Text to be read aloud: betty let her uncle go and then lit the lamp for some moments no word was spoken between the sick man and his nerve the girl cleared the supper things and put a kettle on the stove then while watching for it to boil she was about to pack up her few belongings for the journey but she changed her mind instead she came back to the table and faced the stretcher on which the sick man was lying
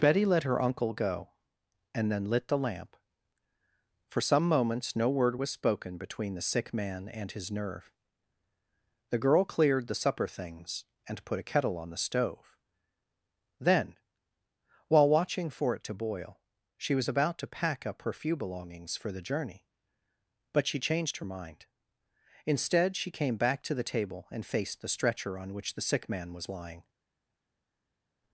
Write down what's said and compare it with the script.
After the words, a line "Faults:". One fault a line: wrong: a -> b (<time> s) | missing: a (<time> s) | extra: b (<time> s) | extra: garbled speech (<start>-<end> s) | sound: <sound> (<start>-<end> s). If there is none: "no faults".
betty let her uncle go and then lit the lamp for some moments no word was spoken between the sick man and his nerve the girl cleared the supper things and put a kettle on the stove then while watching for it to boil she was about to pack up her few belongings for the journey but she changed her mind instead she came back to the table and faced the stretcher on which the sick man was lying
Faults:
no faults